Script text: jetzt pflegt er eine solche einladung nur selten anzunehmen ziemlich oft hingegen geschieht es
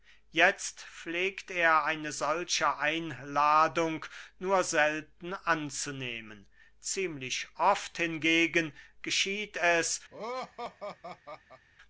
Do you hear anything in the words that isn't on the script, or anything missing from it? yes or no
no